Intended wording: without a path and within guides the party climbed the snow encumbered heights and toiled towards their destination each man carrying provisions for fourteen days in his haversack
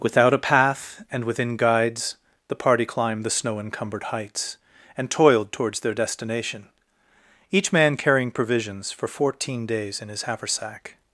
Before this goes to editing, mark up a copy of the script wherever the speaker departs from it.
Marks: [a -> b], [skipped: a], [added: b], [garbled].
without a path and within guides the party climbed the snow encumbered heights and toiled towards their destination each man carrying provisions for fourteen days in his haversack